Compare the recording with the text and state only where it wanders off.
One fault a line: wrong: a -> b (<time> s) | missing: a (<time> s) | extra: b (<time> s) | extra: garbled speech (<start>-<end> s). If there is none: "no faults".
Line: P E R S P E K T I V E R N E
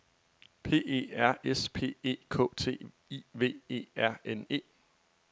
no faults